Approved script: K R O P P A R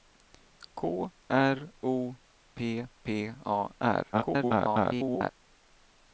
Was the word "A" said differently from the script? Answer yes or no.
no